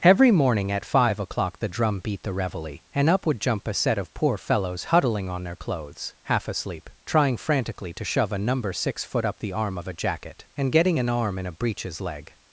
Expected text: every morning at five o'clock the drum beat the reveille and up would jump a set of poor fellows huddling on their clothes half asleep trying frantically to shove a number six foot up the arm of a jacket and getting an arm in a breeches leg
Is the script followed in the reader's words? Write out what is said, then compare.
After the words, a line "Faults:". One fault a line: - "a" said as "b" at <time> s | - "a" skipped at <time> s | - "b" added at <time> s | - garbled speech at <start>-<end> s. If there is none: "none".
every morning at five o'clock the drum beat the reveille and up would jump a set of poor fellows huddling on their clothes half asleep trying frantically to shove a number six foot up the arm of a jacket and getting an arm in a breeches leg
Faults:
none